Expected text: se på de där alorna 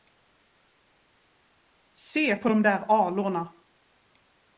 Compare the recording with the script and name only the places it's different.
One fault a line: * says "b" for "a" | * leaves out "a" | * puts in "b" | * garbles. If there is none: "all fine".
all fine